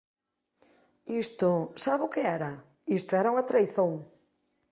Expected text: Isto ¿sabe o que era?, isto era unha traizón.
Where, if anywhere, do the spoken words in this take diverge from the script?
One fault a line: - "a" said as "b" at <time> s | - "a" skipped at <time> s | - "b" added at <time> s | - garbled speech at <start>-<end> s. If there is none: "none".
none